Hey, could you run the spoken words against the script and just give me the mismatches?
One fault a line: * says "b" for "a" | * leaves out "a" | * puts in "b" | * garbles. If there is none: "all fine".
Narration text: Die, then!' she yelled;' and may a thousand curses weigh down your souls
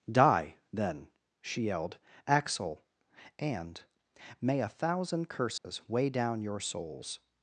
* puts in "axel"